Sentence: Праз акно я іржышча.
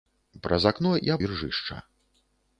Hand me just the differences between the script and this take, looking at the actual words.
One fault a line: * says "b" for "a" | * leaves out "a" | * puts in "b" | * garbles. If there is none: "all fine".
all fine